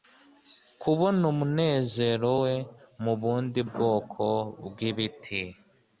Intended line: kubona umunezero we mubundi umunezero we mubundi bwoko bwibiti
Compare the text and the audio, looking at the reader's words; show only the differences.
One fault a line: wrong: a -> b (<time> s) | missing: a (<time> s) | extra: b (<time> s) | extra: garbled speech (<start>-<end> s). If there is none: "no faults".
missing: umunezero we mubundi (3.6 s)